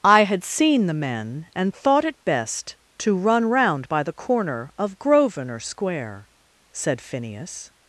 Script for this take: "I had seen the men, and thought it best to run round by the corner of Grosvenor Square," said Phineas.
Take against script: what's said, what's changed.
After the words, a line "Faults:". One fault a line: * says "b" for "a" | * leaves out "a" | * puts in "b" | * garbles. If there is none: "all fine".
"I had seen the men, and thought it best to run round by the corner of Grosvenor Square," said Phineas.
Faults:
all fine